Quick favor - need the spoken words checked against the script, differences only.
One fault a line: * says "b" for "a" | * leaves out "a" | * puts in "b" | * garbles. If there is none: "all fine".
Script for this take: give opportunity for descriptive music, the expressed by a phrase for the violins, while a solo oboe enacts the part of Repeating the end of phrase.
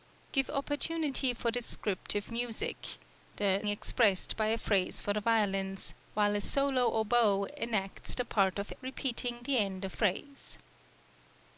all fine